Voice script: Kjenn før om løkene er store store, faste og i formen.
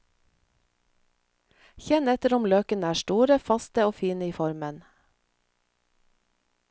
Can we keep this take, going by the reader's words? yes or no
no